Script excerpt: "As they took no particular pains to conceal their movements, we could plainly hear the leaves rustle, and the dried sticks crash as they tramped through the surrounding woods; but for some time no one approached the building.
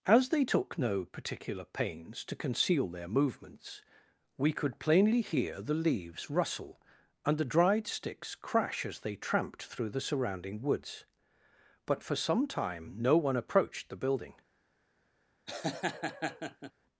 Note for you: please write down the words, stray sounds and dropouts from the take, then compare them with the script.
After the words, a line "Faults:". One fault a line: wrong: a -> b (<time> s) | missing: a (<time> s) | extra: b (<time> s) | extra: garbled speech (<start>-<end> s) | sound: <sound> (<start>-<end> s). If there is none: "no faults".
"As they took no particular pains to conceal their movements, we could plainly hear the leaves rustle, and the dried sticks crash as they tramped through the surrounding woods; but for some time no one approached the building.
Faults:
sound: laugh (15.5-16.7 s)